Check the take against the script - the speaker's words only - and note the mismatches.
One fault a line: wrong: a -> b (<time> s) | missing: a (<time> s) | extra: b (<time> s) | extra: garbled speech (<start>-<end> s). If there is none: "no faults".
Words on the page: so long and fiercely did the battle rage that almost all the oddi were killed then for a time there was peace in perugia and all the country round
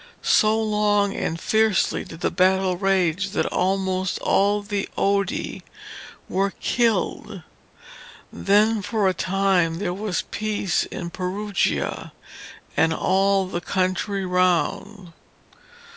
no faults